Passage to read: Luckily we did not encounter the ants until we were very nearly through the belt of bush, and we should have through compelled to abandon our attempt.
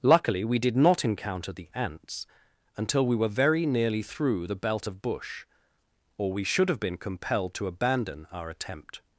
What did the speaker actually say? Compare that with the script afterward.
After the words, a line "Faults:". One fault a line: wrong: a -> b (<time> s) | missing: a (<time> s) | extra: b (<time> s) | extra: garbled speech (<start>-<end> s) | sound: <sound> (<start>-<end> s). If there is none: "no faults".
Luckily we did not encounter the ants until we were very nearly through the belt of bush, or we should have been compelled to abandon our attempt.
Faults:
wrong: and -> or (6.2 s)
wrong: through -> been (6.8 s)